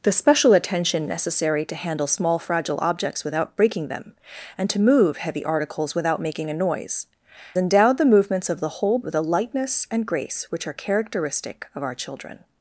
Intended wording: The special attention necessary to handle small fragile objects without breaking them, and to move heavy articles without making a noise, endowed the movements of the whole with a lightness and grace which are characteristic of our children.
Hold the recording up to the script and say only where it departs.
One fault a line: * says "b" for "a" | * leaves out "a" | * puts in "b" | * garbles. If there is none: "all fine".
all fine